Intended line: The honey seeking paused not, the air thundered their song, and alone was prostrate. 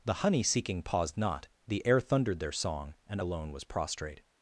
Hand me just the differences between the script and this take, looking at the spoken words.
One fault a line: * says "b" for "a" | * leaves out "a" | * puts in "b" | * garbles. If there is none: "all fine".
all fine